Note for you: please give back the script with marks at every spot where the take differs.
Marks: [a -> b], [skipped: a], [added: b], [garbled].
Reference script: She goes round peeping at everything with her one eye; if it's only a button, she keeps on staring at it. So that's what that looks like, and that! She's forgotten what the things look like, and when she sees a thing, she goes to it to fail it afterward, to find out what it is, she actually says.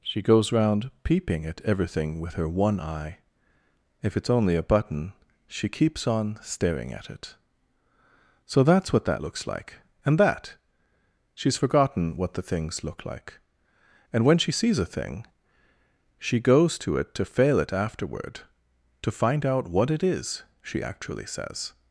She goes round peeping at everything with her one eye; if it's only a button, she keeps on staring at it. So that's what that looks like, and that! She's forgotten what the things look like, and when she sees a thing, she goes to it to fail it afterward, to find out what it is, she actually says.